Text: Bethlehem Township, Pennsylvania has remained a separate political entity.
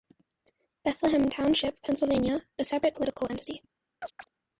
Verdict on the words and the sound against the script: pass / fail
fail